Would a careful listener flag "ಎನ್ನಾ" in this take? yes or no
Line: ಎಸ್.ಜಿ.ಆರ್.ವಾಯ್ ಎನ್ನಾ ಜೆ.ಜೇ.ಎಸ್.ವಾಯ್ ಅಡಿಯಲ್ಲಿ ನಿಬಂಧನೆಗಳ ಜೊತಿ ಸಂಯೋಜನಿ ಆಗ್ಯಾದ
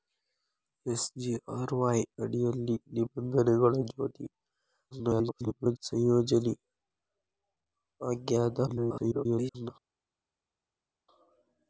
yes